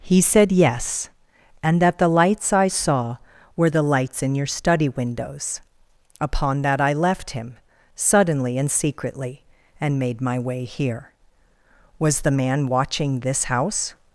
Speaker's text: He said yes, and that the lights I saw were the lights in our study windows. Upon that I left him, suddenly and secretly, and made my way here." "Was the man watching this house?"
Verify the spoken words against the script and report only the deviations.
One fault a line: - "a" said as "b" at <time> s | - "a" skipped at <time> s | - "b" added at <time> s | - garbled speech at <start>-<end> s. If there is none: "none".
- "our" said as "your" at 4.4 s